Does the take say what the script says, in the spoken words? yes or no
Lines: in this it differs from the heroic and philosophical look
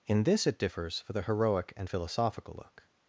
no